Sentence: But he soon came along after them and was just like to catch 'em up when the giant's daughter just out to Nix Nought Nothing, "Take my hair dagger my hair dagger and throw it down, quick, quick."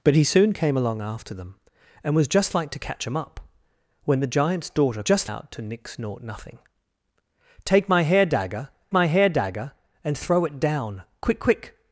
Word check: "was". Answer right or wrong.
right